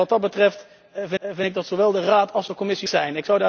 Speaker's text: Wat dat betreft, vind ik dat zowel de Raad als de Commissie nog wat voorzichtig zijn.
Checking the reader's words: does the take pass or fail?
fail